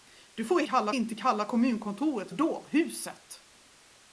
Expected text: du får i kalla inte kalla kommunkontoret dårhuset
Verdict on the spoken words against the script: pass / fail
pass